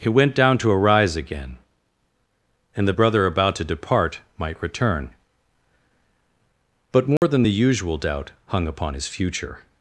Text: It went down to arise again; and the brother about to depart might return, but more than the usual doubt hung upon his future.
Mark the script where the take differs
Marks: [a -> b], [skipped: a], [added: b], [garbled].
[It -> He] went down to arise again; and the brother about to depart might return, but more than the usual doubt hung upon his future.